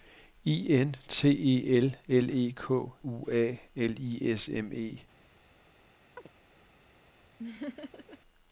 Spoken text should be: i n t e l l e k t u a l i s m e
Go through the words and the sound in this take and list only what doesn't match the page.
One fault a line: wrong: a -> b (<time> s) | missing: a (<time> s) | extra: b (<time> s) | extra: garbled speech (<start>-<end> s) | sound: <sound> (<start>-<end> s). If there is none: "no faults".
missing: t (2.9 s)
sound: chirp (6.2-6.3 s)
sound: laugh (7.4-8.2 s)